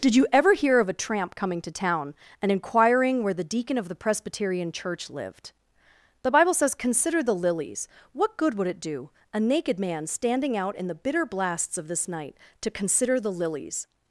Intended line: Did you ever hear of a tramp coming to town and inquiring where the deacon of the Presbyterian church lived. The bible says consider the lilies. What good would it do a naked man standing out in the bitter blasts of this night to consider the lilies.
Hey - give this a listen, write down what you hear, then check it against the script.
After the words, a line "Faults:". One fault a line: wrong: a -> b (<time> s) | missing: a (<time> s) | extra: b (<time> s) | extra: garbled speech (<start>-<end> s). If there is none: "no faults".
Did you ever hear of a tramp coming to town and inquiring where the deacon of the Presbyterian church lived. The bible says consider the lilies. What good would it do a naked man standing out in the bitter blasts of this night to consider the lilies.
Faults:
no faults